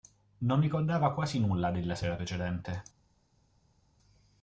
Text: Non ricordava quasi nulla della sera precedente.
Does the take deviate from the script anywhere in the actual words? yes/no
no